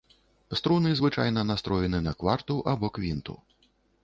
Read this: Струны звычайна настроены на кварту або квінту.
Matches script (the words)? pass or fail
pass